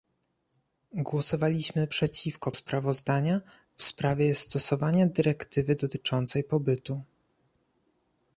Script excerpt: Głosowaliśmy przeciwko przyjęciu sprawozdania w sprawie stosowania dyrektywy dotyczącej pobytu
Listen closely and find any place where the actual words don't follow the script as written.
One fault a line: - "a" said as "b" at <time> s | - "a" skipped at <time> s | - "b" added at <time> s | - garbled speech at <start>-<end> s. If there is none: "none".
- "przyjęciu" skipped at 2.5 s